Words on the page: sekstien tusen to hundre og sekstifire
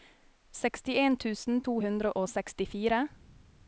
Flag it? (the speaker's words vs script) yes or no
no